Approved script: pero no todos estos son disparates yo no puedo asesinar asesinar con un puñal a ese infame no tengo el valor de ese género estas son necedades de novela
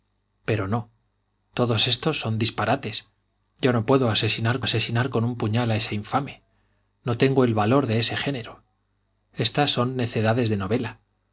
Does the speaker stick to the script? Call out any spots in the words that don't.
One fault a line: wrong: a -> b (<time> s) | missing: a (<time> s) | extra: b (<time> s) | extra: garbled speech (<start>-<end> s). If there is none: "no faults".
no faults